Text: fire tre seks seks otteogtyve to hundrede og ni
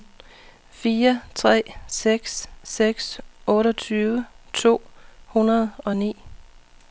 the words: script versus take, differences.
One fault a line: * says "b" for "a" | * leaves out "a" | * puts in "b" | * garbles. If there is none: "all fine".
all fine